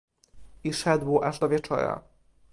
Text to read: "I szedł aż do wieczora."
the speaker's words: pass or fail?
pass